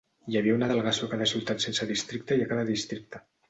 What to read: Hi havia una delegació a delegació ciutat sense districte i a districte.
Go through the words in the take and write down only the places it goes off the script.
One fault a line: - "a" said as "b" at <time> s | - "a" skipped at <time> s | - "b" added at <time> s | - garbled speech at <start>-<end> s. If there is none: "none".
- "delegació" said as "cada" at 1.1 s
- "cada" added at 2.5 s